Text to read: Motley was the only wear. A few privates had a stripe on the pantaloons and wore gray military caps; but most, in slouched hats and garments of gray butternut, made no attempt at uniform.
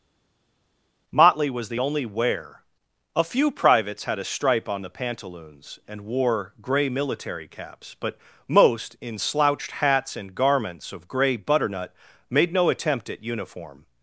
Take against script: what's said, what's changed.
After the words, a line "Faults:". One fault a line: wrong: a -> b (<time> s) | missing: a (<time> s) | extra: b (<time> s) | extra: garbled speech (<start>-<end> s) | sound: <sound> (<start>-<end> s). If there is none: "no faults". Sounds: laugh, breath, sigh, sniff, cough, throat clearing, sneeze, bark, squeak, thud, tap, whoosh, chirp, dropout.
Motley was the only wear. A few privates had a stripe on the pantaloons and wore gray military caps; but most, in slouched hats and garments of gray butternut, made no attempt at uniform.
Faults:
no faults